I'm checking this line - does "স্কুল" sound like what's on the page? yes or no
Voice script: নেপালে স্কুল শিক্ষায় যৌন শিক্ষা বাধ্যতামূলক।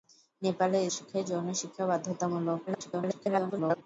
no